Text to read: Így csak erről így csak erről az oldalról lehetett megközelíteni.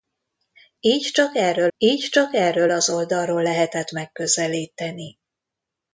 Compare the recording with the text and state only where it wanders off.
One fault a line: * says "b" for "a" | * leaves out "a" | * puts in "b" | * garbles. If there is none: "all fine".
all fine